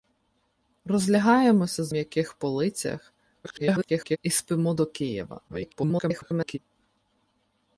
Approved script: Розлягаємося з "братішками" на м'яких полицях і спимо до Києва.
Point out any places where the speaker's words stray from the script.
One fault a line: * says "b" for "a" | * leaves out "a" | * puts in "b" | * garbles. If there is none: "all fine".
* leaves out "братішками на"
* garbles
* garbles